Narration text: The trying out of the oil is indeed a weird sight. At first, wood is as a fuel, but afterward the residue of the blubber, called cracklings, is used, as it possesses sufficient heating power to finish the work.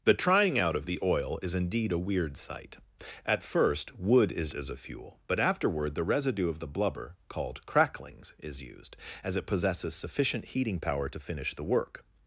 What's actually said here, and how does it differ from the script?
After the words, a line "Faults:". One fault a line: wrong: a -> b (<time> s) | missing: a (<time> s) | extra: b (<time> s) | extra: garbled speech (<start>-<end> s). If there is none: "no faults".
The trying out of the oil is indeed a weird sight. At first, wood is as a fuel, but afterward the residue of the blubber, called cracklings, is used, as it possesses sufficient heating power to finish the work.
Faults:
no faults